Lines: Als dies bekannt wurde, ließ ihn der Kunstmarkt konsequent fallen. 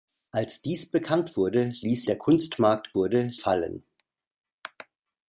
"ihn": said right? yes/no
no